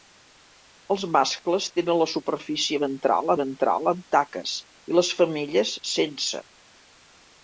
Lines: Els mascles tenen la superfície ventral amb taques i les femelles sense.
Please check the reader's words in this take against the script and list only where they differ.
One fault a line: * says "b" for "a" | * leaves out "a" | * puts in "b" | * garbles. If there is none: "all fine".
* puts in "ventral"